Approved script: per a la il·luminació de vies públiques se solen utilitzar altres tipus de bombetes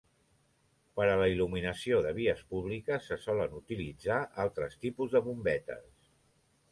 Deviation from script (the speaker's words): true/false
false